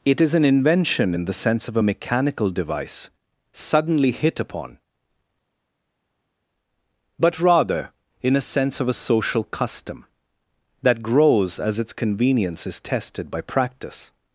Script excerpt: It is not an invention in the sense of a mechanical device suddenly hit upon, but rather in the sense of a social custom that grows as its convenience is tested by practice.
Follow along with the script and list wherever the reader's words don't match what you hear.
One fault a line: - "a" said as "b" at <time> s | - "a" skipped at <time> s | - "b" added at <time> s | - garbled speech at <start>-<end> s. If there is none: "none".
- "not" skipped at 0.3 s
- "the" said as "a" at 8.4 s